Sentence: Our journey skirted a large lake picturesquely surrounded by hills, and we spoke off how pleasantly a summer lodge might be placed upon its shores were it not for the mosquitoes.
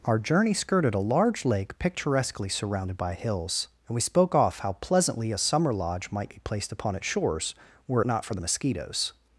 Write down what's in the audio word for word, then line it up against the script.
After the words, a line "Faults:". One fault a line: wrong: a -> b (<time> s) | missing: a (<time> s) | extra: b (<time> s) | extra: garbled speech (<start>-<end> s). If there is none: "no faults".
Our journey skirted a large lake picturesquely surrounded by hills, and we spoke off how pleasantly a summer lodge might be placed upon its shores were it not for the mosquitoes.
Faults:
no faults